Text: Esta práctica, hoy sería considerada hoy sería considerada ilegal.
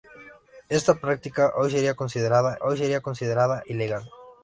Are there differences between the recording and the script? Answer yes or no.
no